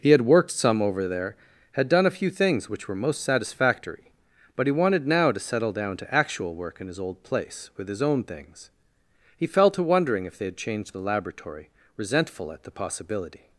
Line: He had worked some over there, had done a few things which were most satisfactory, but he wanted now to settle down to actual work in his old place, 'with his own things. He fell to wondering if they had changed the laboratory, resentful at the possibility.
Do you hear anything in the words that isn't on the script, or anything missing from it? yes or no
no